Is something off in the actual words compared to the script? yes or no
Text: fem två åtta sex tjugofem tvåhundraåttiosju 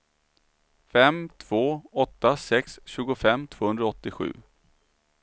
no